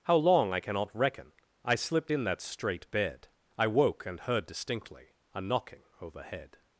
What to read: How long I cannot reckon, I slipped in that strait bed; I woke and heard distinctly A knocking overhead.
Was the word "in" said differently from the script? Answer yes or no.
no